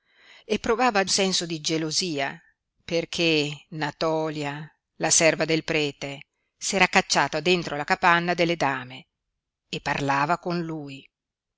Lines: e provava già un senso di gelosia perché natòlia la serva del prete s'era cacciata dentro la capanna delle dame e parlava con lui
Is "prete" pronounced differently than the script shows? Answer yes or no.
no